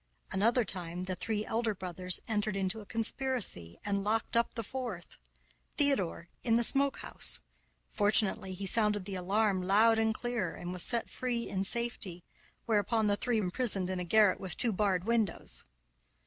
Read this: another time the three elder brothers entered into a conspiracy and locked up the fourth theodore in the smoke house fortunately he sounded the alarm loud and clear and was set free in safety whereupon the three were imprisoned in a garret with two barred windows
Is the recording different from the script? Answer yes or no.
yes